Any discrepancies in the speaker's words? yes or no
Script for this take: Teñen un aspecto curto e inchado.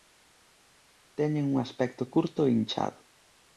no